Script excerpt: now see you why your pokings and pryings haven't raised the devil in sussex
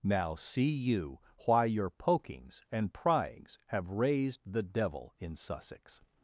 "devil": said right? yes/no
yes